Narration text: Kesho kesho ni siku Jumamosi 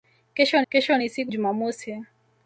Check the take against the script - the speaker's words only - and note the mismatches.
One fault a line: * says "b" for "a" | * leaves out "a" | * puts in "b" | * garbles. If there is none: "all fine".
all fine